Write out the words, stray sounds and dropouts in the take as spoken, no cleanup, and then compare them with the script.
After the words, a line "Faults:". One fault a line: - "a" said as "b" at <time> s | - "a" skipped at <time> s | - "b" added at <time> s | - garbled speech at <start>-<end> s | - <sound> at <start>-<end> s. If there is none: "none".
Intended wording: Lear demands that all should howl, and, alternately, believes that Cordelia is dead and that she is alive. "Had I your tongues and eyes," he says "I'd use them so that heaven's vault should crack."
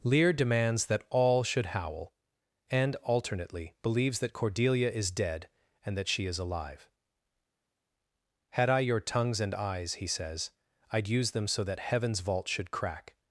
Lear demands that all should howl, and, alternately, believes that Cordelia is dead and that she is alive. "Had I your tongues and eyes," he says "I'd use them so that heaven's vault should crack."
Faults:
none